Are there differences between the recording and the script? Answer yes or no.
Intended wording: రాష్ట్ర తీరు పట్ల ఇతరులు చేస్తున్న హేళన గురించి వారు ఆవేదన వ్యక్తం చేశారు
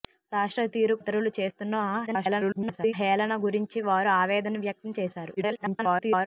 yes